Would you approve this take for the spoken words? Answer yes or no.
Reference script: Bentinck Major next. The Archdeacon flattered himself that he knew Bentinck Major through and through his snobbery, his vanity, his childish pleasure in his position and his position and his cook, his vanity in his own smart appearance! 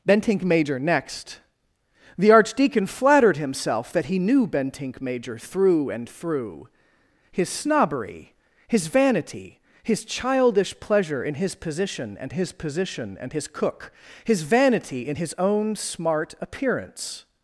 yes